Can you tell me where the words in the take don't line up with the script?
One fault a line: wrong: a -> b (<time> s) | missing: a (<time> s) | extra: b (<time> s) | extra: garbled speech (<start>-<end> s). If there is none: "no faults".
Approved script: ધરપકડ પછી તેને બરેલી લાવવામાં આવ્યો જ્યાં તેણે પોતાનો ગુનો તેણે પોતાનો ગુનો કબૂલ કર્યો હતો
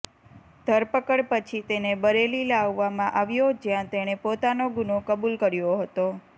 missing: તેણે પોતાનો ગુનો (5.0 s)